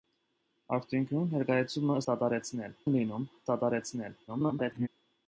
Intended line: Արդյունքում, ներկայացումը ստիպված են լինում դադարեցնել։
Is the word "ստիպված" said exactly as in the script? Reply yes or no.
no